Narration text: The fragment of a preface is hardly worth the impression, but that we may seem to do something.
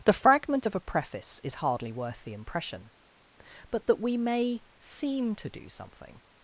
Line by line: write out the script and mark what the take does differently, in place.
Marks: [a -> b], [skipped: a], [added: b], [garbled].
The fragment of a preface is hardly worth the impression, but that we may seem to do something.